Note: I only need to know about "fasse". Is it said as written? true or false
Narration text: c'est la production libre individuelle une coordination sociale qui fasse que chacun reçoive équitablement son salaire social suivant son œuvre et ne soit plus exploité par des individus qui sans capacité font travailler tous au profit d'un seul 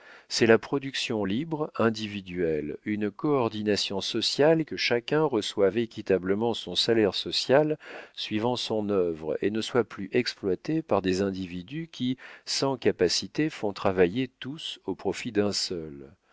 false